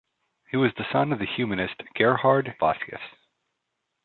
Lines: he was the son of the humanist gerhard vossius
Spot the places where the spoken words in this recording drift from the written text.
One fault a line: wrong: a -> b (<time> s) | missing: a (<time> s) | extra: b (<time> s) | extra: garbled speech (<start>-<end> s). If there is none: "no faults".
no faults